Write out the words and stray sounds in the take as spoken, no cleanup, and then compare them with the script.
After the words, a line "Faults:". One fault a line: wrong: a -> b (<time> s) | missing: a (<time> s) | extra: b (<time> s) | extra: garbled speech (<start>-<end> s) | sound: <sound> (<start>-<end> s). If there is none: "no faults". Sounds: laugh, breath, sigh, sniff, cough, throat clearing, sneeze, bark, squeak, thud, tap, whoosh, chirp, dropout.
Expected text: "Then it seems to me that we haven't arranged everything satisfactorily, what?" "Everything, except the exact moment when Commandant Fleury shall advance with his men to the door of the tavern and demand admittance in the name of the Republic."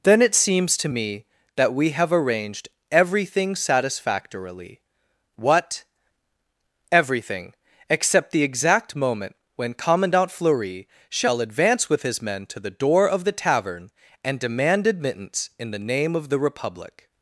"Then it seems to me that we have arranged everything satisfactorily, what?" "Everything, except the exact moment when Commandant Fleury shall advance with his men to the door of the tavern and demand admittance in the name of the Republic."
Faults:
wrong: haven't -> have (1.9 s)